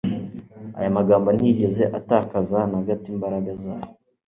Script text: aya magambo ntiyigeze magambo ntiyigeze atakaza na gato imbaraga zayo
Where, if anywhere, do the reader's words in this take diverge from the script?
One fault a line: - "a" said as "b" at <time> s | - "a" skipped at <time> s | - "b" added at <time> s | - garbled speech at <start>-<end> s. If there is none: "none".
- "magambo ntiyigeze" skipped at 1.8 s